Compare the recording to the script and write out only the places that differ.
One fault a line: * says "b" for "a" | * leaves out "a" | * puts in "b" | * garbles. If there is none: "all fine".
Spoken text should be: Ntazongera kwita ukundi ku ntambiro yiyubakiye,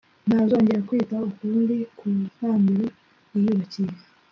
all fine